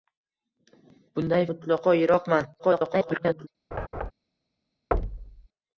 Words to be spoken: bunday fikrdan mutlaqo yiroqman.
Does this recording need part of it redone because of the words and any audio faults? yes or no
yes